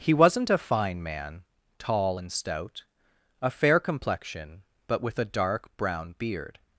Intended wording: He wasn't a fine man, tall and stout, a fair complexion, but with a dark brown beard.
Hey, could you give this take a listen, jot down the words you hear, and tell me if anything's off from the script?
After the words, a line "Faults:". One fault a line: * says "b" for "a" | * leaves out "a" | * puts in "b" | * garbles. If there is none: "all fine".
He wasn't a fine man, tall and stout, a fair complexion, but with a dark brown beard.
Faults:
all fine